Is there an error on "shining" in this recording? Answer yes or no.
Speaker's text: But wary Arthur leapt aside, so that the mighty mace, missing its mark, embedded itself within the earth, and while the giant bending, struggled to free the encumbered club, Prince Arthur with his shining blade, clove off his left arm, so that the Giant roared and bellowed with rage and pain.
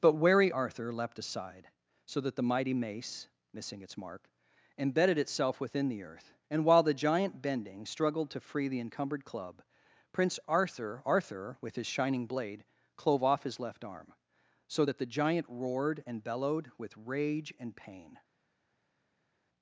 no